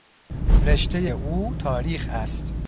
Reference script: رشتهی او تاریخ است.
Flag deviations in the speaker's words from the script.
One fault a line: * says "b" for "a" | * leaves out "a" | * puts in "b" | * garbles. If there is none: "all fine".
all fine